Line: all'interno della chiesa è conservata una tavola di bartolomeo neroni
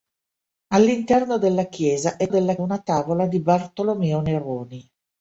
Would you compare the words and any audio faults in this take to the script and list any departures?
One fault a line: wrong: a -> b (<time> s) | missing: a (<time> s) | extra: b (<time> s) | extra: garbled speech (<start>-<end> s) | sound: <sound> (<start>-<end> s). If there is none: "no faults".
wrong: conservata -> della (2.3 s)